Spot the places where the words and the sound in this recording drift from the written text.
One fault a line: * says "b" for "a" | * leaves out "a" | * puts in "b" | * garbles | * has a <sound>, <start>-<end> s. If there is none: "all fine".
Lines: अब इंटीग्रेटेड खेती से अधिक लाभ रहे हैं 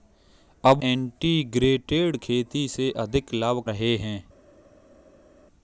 all fine